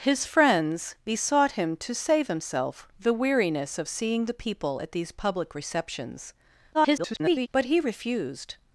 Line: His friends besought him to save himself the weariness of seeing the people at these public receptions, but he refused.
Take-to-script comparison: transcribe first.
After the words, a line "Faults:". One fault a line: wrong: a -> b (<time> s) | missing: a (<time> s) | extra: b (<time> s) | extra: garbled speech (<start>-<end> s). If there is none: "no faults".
His friends besought him to save himself the weariness of seeing the people at these public receptions, [garbled] but he refused.
Faults:
extra: garbled speech (6.7-7.5 s)